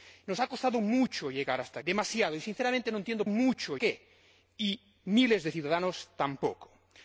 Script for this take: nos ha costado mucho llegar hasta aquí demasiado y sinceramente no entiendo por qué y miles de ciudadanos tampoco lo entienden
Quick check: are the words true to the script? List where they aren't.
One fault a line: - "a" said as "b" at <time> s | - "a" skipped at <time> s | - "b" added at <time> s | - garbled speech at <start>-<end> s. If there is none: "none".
- "aquí" skipped at 1.8 s
- "por" said as "mucho" at 3.3 s